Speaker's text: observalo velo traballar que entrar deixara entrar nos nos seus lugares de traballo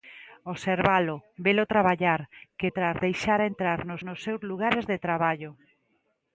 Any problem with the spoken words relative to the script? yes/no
no